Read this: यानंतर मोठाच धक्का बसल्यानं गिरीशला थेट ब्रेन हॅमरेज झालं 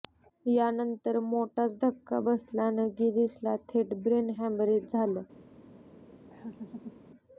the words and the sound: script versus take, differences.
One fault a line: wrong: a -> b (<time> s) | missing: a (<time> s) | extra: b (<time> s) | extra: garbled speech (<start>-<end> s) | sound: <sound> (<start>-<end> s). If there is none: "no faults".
sound: laugh (6.3-7.0 s)